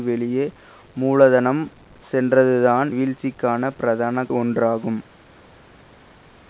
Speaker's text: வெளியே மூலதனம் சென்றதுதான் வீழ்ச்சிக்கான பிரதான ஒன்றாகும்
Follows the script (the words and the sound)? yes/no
yes